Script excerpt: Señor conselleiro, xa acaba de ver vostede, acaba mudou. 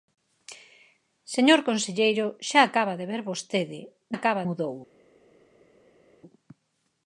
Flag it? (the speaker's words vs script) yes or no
no